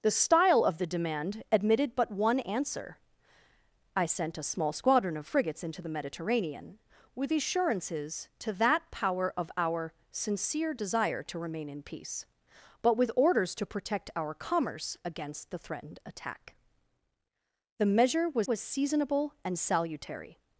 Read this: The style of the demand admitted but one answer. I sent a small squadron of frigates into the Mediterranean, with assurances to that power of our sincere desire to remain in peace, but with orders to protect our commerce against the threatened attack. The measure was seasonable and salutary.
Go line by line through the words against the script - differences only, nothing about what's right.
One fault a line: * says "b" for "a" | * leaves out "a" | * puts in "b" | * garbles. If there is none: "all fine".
* puts in "was"